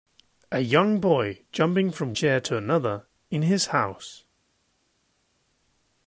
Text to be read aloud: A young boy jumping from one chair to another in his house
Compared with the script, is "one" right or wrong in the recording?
wrong